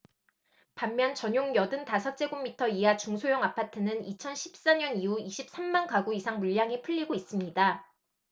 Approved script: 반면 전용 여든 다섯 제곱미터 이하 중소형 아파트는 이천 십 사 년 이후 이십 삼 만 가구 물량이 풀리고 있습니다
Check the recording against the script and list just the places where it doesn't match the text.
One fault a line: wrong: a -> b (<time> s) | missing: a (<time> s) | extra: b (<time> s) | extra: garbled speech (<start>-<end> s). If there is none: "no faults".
extra: 이상 (6.2 s)